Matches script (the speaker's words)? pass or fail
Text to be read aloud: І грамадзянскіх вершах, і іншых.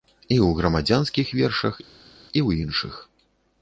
fail